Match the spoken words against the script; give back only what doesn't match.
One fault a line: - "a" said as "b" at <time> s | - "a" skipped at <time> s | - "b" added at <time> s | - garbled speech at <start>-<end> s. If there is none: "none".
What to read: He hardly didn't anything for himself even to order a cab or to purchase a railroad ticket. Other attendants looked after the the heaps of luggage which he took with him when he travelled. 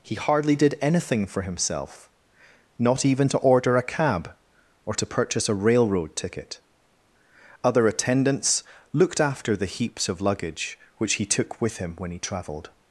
- "didn't" said as "did" at 0.6 s
- "not" added at 2.8 s
- "the" skipped at 9.7 s